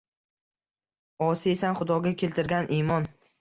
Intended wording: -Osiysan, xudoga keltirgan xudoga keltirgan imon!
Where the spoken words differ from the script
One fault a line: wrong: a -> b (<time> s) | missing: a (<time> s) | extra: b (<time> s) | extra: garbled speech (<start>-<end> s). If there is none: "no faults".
missing: xudoga keltirgan (2.7 s)